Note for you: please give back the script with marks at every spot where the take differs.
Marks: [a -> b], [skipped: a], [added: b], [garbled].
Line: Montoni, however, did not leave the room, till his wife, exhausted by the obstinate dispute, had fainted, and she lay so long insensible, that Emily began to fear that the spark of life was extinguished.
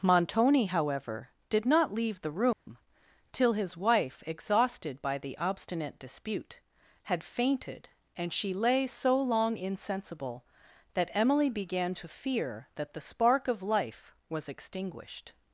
Montoni, however, did not leave the room, till his wife, exhausted by the obstinate dispute, had fainted, and she lay so long insensible, that Emily began to fear that the spark of life was extinguished.